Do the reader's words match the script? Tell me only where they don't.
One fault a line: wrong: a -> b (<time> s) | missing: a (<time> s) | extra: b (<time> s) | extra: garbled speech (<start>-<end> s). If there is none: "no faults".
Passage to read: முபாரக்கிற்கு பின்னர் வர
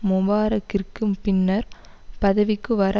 extra: பதவிக்கு (2.2 s)